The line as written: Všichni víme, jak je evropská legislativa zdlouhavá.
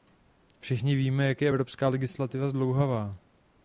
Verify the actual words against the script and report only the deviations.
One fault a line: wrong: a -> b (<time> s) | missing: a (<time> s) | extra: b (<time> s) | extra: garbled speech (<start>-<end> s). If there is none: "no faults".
no faults